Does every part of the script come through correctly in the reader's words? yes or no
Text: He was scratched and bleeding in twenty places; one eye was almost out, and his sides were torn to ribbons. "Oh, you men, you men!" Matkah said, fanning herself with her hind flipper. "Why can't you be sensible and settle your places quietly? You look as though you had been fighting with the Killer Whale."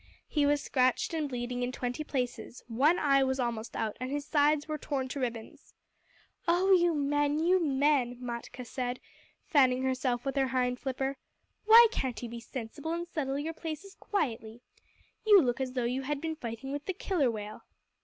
yes